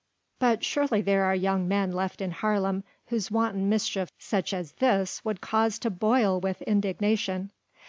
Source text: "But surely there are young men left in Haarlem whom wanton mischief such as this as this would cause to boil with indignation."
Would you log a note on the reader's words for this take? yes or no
yes